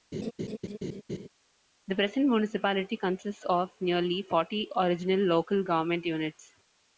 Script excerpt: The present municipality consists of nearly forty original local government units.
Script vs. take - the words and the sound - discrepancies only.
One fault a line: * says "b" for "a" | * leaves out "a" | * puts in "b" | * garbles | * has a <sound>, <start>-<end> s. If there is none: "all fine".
* has a laugh, 0.1-1.3 s